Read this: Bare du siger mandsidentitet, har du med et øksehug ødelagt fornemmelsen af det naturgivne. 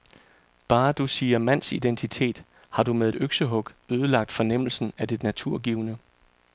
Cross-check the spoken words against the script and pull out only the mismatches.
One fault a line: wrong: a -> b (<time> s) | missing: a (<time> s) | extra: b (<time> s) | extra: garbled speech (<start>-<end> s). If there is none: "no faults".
no faults